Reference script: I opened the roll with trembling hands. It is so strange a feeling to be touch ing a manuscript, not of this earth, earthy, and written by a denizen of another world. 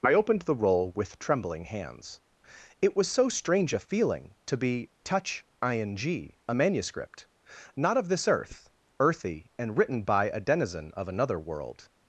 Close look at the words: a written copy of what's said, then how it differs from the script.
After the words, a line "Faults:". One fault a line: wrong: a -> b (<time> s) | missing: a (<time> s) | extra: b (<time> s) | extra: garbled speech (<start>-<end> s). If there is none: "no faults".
I opened the roll with trembling hands. It was so strange a feeling to be touch ing a manuscript, not of this earth, earthy, and written by a denizen of another world.
Faults:
wrong: is -> was (3.0 s)